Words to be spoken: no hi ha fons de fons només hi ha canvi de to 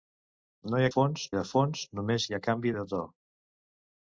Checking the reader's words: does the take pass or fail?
pass